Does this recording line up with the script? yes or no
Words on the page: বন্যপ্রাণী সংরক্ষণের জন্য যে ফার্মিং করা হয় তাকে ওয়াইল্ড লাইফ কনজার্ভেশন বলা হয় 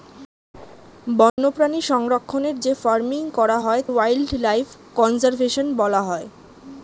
no